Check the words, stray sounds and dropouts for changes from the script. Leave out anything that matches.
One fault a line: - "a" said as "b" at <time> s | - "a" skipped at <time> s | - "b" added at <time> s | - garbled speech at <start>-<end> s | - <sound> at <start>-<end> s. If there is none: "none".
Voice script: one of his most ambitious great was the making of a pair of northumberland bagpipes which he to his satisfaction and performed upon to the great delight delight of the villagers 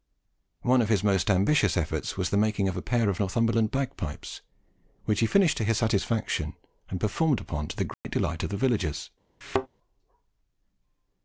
- "great" said as "efforts" at 1.8 s
- "finished" added at 5.3 s
- dropout at 7.9-8.0 s
- "delight" skipped at 8.4 s
- thud at 9.4-9.7 s